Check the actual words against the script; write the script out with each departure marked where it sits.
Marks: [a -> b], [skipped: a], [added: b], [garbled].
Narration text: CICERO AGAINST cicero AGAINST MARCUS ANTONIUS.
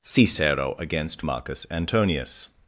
CICERO AGAINST [skipped: cicero AGAINST] MARCUS ANTONIUS.